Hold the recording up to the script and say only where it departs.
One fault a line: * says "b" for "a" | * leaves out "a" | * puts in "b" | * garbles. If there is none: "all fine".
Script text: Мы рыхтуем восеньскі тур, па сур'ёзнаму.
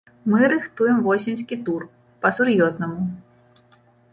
all fine